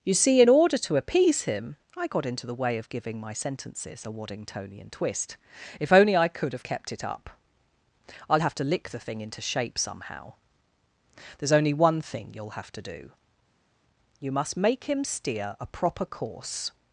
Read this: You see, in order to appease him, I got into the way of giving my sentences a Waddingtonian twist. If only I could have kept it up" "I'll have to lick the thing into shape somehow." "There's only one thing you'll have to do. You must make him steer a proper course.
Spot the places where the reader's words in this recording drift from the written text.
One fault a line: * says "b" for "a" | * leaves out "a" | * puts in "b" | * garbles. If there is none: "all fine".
all fine